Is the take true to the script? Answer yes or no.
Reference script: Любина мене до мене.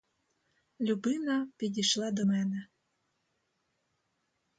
no